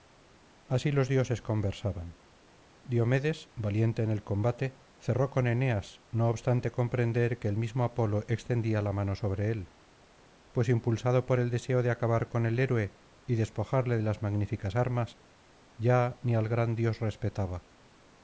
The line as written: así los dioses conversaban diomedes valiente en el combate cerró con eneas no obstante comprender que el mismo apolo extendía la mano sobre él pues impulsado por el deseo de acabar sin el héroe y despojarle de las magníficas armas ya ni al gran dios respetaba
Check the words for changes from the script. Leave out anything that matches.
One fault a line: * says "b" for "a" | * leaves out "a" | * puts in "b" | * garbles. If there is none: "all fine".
* says "con" for "sin"